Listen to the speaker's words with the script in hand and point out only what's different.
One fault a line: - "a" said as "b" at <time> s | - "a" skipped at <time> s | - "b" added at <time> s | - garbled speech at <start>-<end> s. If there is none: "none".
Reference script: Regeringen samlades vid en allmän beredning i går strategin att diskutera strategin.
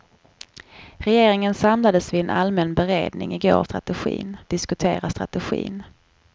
none